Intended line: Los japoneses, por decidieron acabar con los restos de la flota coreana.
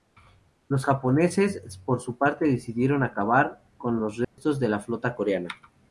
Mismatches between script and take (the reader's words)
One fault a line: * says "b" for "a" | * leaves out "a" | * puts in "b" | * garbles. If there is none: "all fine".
* puts in "su parte"